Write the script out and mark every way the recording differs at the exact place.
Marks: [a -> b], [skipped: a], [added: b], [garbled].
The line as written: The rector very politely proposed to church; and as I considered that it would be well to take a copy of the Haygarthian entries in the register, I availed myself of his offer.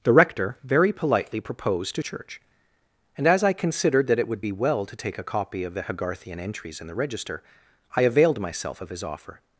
The rector very politely proposed to church; and as I considered that it would be well to take a copy of the Haygarthian entries in the register, I availed myself of his offer.